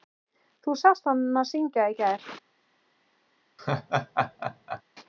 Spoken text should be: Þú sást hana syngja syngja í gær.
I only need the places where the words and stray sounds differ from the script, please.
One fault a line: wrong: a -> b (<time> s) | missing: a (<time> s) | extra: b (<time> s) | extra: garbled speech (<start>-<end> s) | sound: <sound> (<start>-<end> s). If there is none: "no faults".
missing: syngja (1.9 s)
sound: laugh (3.6-4.8 s)